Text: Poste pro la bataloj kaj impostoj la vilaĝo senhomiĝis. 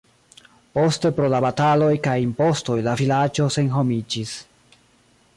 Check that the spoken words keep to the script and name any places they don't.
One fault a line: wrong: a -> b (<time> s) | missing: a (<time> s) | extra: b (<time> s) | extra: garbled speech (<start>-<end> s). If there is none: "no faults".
no faults